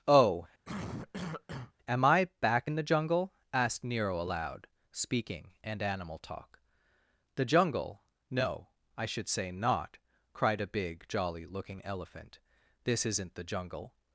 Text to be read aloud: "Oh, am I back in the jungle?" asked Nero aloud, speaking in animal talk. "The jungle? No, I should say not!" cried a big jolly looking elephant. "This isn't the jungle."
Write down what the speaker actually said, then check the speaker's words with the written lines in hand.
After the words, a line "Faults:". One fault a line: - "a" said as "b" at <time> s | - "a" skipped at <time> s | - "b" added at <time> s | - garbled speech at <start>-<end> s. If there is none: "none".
"Oh, am I back in the jungle?" asked Nero aloud, speaking and animal talk. "The jungle? No, I should say not!" cried a big jolly looking elephant. "This isn't the jungle."
Faults:
- "in" said as "and" at 5.6 s